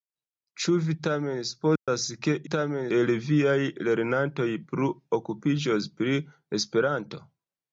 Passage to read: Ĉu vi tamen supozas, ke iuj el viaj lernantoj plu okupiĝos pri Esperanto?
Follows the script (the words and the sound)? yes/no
no